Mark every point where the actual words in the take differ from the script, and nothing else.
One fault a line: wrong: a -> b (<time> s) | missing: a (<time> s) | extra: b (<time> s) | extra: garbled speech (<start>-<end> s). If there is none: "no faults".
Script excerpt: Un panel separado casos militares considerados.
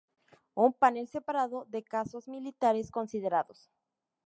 extra: de (1.6 s)